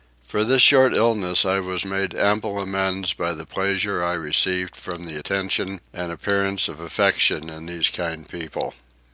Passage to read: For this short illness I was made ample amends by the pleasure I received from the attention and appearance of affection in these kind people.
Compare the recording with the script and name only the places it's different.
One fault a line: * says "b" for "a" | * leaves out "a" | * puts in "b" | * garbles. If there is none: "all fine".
all fine